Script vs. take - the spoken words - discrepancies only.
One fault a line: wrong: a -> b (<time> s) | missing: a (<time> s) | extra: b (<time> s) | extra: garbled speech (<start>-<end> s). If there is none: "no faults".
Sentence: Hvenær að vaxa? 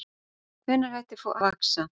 no faults